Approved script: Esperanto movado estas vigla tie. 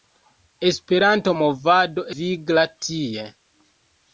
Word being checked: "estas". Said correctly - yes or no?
no